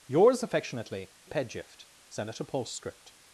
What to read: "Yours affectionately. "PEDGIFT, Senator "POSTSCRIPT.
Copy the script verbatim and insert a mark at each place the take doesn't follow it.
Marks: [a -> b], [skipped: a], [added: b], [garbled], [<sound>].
"Yours affectionately. "PEDGIFT, Senator "POSTSCRIPT.